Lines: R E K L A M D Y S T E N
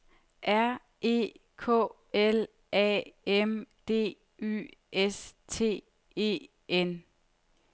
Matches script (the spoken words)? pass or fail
pass